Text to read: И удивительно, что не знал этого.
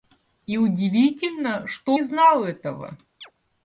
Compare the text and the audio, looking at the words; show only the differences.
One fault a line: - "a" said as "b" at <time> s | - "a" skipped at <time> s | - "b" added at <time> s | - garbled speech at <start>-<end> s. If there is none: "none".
none